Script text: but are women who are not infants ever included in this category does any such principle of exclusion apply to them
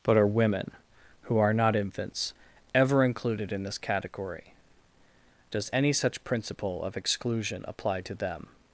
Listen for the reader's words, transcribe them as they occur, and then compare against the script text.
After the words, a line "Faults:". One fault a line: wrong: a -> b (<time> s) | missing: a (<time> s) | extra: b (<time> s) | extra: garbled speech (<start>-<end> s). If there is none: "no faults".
but are women who are not infants ever included in this category does any such principle of exclusion apply to them
Faults:
no faults